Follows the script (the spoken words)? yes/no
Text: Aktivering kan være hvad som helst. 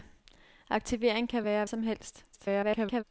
no